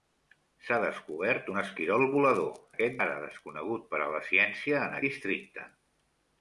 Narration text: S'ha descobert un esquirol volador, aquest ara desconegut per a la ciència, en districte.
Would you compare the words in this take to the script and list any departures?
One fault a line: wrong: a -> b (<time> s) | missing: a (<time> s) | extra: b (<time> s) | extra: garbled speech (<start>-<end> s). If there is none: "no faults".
no faults